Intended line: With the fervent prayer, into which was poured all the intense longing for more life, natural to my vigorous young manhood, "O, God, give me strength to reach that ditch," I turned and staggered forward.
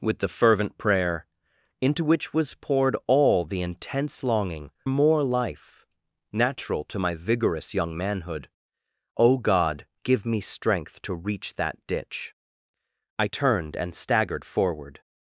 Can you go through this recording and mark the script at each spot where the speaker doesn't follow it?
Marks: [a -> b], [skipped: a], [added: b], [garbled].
With the fervent prayer, into which was poured all the intense longing [skipped: for] more life, natural to my vigorous young manhood, "O, God, give me strength to reach that ditch," I turned and staggered forward.